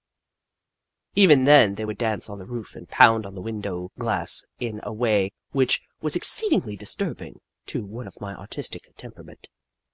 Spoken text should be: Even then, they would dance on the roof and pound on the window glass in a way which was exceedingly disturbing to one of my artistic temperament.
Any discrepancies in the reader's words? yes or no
no